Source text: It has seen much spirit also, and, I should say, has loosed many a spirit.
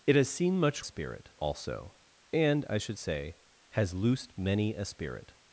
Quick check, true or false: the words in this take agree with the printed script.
true